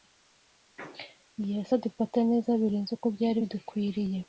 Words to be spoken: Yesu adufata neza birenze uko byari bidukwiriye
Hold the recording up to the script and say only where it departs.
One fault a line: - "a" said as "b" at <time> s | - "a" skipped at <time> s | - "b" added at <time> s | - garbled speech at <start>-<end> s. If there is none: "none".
none